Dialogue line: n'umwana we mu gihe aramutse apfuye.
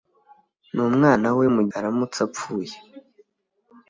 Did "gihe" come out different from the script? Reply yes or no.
yes